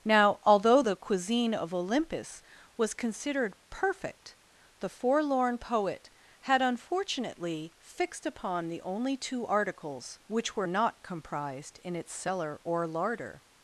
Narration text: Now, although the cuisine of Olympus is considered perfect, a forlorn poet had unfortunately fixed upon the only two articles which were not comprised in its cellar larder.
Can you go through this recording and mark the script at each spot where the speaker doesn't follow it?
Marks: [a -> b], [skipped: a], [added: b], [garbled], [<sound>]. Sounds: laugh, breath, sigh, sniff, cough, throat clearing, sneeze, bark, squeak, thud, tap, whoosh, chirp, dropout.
Now, although the cuisine of Olympus [is -> was] considered perfect, [a -> the] forlorn poet had unfortunately fixed upon the only two articles which were not comprised in its cellar [added: or] larder.